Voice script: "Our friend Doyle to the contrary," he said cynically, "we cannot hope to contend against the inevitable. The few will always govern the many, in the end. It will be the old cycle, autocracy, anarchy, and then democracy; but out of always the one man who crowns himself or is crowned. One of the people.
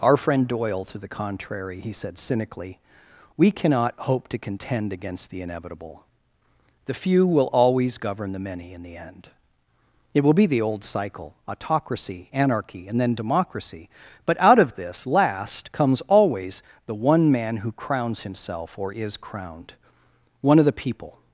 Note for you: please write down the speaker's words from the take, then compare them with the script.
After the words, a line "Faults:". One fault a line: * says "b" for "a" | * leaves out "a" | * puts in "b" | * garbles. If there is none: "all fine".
"Our friend Doyle to the contrary," he said cynically, "we cannot hope to contend against the inevitable. The few will always govern the many, in the end. It will be the old cycle, autocracy, anarchy, and then democracy; but out of this last comes always the one man who crowns himself or is crowned. One of the people.
Faults:
* puts in "this last comes"